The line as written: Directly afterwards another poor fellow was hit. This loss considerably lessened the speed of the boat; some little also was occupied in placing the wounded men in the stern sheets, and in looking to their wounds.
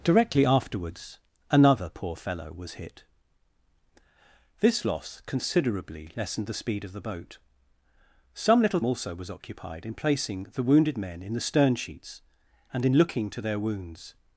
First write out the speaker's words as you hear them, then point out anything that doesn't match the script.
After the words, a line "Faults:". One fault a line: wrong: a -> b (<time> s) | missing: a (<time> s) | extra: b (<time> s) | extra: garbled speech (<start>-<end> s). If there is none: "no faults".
Directly afterwards another poor fellow was hit. This loss considerably lessened the speed of the boat; some little also was occupied in placing the wounded men in the stern sheets, and in looking to their wounds.
Faults:
no faults